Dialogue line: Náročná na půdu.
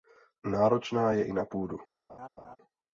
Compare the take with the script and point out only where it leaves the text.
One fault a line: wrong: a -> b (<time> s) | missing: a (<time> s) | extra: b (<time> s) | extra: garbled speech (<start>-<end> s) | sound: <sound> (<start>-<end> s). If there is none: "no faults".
extra: je i (1.1 s)
sound: laugh (2.1-2.6 s)